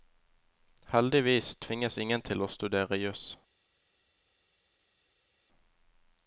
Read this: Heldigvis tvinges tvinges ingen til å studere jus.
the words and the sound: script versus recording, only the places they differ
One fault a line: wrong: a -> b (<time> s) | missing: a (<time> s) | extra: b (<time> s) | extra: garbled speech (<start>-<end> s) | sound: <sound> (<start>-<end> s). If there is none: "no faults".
missing: tvinges (2.0 s)